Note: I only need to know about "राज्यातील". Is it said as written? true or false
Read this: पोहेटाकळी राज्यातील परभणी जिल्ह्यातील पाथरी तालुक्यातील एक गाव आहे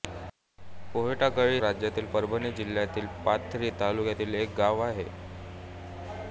true